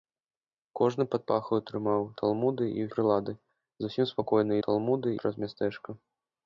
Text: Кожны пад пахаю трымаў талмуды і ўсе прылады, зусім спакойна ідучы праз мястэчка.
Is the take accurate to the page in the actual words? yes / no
no